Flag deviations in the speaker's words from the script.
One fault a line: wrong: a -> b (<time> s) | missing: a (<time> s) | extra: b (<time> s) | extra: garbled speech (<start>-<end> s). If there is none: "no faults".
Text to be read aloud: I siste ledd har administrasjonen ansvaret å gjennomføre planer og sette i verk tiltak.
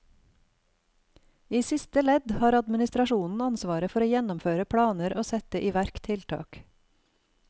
extra: for (3.9 s)